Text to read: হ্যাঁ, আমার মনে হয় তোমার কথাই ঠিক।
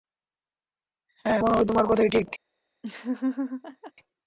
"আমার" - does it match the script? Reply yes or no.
no